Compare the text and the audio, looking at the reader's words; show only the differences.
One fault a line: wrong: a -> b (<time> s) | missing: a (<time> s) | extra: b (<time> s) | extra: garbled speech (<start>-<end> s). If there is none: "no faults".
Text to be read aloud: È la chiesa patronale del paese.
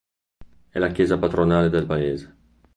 no faults